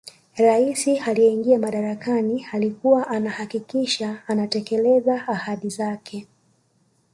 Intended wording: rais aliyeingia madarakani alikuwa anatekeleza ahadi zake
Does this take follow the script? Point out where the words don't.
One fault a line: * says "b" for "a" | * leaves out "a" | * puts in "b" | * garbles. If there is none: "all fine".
* puts in "anahakikisha"